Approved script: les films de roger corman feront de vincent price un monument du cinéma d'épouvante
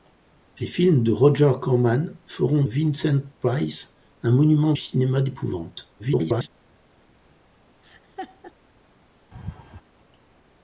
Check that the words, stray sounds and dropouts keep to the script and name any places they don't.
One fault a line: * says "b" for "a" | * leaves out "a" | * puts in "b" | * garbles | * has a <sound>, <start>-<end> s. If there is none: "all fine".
* leaves out "de"
* leaves out "du"
* garbles
* has a laugh, 7.8-8.5 s
* has a laugh, 9.3-9.8 s